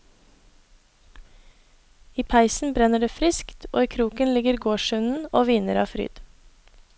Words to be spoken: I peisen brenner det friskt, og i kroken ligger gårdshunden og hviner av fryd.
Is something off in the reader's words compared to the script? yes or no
no